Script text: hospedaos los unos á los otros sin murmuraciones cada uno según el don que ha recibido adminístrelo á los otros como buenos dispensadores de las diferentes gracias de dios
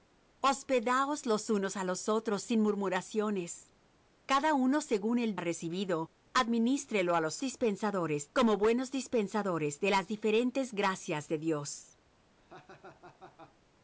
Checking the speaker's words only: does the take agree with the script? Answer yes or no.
no